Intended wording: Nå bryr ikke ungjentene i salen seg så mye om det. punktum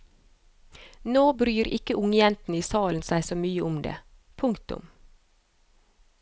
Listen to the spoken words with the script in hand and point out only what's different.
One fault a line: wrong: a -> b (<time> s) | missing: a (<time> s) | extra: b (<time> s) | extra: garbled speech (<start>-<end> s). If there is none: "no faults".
no faults